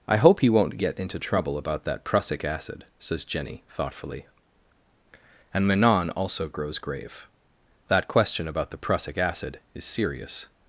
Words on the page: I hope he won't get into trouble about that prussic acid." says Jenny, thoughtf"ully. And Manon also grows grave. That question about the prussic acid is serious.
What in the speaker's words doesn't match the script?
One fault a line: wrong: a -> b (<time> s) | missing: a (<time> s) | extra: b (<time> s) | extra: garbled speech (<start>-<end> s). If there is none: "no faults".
no faults